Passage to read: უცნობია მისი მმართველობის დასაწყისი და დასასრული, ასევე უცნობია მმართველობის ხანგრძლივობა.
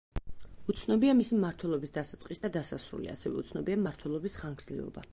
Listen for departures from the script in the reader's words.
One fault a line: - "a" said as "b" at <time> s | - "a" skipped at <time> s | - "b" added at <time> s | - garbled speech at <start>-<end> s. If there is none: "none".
none